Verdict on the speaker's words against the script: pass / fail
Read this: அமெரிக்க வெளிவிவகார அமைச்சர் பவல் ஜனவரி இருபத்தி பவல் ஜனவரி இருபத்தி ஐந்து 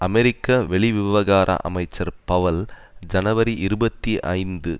fail